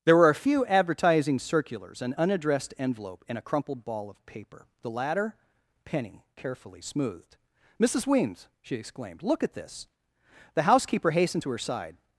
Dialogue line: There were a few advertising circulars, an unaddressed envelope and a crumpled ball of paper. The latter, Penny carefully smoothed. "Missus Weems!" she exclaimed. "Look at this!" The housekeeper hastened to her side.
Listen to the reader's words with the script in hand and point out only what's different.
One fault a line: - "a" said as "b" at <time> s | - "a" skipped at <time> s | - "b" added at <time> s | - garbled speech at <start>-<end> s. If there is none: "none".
none